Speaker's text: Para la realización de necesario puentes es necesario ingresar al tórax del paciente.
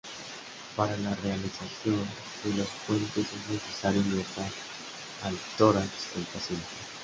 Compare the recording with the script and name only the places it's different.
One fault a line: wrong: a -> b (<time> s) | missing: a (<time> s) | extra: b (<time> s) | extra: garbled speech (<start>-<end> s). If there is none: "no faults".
wrong: necesario -> los (2.6 s)